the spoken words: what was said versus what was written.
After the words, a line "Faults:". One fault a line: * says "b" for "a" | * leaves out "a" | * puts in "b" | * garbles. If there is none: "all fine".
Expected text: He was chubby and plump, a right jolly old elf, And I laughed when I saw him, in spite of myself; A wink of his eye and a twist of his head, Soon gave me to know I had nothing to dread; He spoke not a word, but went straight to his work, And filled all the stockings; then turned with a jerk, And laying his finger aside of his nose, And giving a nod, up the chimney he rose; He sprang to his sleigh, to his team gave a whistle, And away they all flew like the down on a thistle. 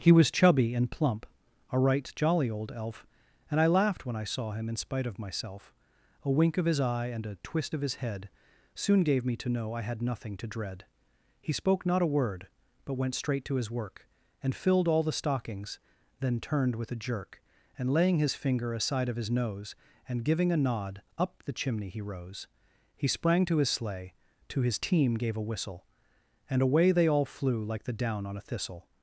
He was chubby and plump, a right jolly old elf, And I laughed when I saw him, in spite of myself; A wink of his eye and a twist of his head, Soon gave me to know I had nothing to dread; He spoke not a word, but went straight to his work, And filled all the stockings; then turned with a jerk, And laying his finger aside of his nose, And giving a nod, up the chimney he rose; He sprang to his sleigh, to his team gave a whistle, And away they all flew like the down on a thistle.
Faults:
all fine